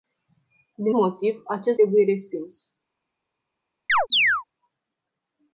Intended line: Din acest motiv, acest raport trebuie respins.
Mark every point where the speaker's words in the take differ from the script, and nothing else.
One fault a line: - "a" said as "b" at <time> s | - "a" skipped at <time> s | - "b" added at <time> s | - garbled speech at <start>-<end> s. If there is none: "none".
- "acest" skipped at 0.9 s
- "raport" skipped at 1.8 s